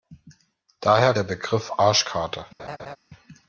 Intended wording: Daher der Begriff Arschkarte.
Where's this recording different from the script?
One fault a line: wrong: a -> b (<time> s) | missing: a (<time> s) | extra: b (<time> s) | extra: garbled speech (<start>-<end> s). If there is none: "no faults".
no faults